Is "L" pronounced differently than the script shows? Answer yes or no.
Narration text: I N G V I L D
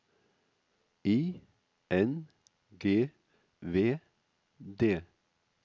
yes